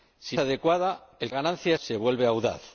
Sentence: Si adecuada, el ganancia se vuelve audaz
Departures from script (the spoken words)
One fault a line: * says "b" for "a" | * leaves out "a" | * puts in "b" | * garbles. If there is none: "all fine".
all fine